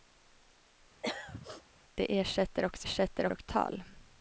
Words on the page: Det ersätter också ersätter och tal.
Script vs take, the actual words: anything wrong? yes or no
no